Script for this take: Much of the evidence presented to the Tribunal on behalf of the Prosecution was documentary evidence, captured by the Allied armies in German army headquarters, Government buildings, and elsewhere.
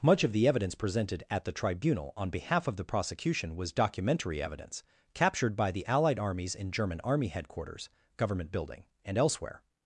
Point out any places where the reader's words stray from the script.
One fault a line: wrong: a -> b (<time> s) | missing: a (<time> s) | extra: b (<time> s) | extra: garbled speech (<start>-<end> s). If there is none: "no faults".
wrong: to -> at (1.3 s)
wrong: buildings -> building (8.5 s)